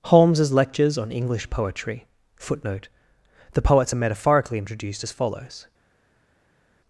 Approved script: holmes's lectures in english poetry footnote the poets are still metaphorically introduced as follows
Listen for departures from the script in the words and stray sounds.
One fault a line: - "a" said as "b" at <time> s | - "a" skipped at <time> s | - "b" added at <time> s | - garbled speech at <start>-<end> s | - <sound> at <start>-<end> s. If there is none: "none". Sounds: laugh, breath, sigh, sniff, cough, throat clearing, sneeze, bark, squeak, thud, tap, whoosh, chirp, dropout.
- "in" said as "on" at 1.0 s
- "still" skipped at 4.0 s